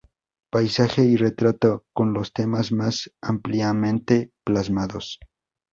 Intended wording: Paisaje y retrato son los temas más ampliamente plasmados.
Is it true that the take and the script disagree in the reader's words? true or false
false